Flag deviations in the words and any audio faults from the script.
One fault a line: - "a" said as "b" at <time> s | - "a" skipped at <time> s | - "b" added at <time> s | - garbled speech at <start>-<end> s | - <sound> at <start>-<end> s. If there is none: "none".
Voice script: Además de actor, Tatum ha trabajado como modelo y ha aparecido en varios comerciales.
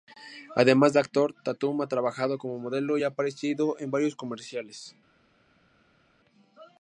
none